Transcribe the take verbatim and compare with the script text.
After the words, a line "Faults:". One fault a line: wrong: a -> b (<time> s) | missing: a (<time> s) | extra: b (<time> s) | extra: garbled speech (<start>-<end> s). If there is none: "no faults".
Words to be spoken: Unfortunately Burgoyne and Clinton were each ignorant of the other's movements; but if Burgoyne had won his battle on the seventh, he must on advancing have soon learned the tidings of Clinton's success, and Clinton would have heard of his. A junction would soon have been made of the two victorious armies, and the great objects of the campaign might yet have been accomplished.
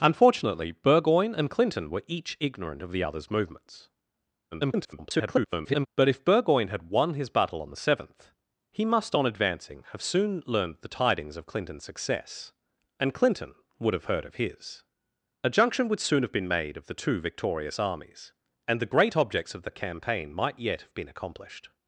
Unfortunately Burgoyne and Clinton were each ignorant of the other's movements; [garbled] but if Burgoyne had won his battle on the seventh, he must on advancing have soon learned the tidings of Clinton's success, and Clinton would have heard of his. A junction would soon have been made of the two victorious armies, and the great objects of the campaign might yet have been accomplished.
Faults:
extra: garbled speech (4.5-5.9 s)